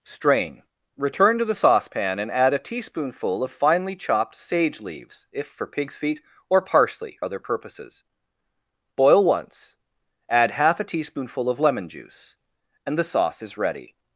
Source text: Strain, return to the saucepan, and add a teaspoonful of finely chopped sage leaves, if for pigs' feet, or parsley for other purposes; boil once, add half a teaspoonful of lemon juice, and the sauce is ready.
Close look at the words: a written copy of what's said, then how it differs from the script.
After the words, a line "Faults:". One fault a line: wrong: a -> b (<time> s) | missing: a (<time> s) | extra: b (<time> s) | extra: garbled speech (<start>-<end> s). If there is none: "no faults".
Strain, return to the saucepan, and add a teaspoonful of finely chopped sage leaves, if for pigs' feet, or parsley other purposes; boil once, add half a teaspoonful of lemon juice, and the sauce is ready.
Faults:
missing: for (7.2 s)